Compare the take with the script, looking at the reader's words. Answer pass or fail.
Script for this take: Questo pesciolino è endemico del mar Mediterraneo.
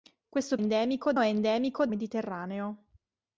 fail